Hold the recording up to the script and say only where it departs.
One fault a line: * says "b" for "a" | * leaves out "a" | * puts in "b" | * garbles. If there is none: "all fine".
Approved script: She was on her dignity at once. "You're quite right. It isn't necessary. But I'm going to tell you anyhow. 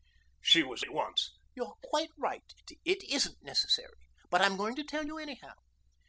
* leaves out "on her dignity"